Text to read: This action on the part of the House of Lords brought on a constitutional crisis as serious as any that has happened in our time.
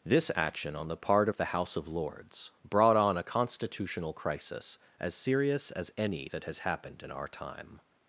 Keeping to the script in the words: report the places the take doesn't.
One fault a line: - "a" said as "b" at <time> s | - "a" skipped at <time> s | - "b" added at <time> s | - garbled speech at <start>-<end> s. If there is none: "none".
none